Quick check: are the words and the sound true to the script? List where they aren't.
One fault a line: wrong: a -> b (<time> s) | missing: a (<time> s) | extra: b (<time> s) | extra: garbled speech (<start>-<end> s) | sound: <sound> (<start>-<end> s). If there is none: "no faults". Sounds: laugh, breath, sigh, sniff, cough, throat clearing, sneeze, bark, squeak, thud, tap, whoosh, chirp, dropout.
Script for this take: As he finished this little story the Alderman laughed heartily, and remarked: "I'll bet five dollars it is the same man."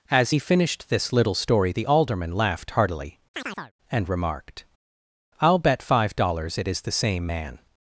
sound: chirp (3.3-3.7 s)